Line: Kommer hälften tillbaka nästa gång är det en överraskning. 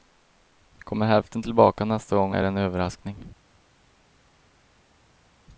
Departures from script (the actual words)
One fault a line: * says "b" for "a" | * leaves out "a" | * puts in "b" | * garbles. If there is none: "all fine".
all fine